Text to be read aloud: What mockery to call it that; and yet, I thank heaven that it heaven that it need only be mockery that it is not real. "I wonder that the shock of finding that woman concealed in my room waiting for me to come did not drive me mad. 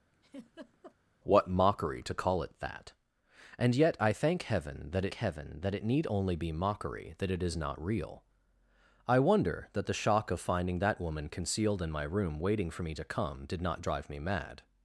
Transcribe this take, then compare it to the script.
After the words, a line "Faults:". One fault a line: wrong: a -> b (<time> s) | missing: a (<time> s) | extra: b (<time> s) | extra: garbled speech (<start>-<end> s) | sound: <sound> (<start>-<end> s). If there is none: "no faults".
What mockery to call it that; and yet, I thank heaven that it heaven that it need only be mockery that it is not real. "I wonder that the shock of finding that woman concealed in my room waiting for me to come did not drive me mad.
Faults:
sound: laugh (0.1-1.0 s)